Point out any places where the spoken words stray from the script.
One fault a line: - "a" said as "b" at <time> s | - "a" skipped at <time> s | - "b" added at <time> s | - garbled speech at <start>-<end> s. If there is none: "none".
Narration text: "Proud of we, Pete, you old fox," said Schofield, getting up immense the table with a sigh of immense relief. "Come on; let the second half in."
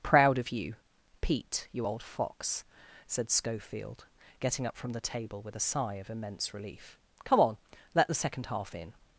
- "we" said as "you" at 0.5 s
- "immense" said as "from" at 4.8 s